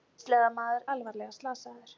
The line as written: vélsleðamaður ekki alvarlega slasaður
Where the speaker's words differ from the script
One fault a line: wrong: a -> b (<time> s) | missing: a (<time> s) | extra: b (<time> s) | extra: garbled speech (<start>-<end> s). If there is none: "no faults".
missing: ekki (0.9 s)